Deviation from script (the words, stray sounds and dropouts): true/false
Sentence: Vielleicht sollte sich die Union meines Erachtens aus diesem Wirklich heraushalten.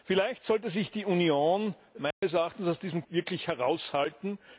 true